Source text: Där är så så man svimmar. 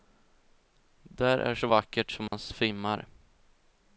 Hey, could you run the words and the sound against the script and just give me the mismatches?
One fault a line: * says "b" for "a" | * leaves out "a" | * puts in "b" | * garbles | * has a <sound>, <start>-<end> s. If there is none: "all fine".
* puts in "vackert"
* has a dropout, 2.3-2.3 s